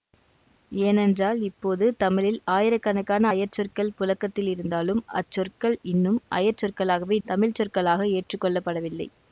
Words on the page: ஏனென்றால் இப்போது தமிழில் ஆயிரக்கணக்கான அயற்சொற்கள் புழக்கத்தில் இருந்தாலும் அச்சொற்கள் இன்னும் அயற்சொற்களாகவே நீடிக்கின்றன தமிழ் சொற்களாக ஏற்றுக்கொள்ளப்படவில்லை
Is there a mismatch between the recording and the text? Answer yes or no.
yes